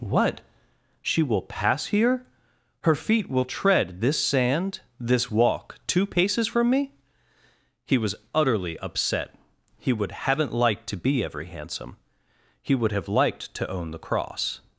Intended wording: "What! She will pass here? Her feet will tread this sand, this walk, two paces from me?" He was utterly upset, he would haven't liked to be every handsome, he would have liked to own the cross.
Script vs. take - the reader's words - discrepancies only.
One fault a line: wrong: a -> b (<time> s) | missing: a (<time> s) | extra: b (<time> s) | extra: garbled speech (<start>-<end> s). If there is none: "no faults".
no faults